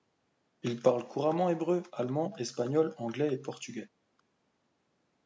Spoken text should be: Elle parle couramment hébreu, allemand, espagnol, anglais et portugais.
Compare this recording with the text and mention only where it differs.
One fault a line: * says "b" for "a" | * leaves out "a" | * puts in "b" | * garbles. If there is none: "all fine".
* says "Il" for "Elle"